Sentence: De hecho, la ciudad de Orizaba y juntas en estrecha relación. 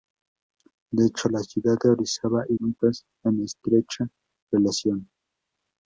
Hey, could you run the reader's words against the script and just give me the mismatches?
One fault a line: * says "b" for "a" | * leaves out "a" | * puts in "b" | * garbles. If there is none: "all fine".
all fine